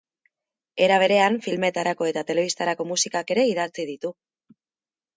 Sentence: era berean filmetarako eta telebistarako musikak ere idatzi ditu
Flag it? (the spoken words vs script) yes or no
no